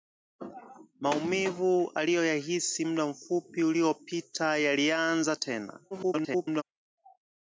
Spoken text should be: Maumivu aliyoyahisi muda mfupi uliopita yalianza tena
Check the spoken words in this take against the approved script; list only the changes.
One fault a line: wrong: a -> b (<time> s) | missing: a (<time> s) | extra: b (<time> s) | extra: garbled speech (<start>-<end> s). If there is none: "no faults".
extra: garbled speech (5.9-6.6 s)